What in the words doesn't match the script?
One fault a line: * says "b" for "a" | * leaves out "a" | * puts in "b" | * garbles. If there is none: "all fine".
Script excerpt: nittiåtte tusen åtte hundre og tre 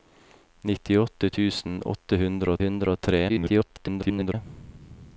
* puts in "hundre"
* garbles